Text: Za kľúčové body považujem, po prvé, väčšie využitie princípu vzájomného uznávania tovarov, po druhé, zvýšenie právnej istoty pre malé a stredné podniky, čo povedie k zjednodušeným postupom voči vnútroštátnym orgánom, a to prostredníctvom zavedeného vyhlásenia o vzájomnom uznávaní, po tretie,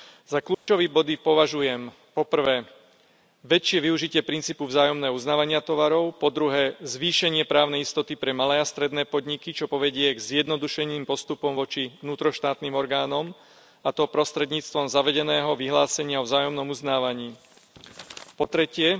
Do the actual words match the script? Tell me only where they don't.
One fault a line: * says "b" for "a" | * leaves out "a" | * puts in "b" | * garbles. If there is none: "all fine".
all fine